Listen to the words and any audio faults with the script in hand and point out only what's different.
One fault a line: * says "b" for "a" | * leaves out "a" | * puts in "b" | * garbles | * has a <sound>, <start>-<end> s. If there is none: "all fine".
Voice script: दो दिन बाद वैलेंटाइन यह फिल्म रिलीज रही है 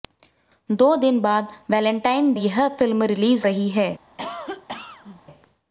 * has a cough, 4.2-5.2 s